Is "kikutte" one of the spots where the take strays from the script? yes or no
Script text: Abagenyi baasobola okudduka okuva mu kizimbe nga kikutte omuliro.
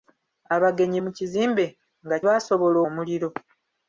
yes